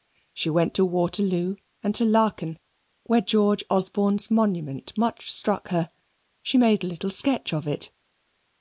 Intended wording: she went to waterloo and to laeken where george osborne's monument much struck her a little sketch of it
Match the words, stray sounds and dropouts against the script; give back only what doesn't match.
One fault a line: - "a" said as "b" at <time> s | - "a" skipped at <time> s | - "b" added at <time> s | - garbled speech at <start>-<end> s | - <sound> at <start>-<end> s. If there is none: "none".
- "she made" added at 6.4 s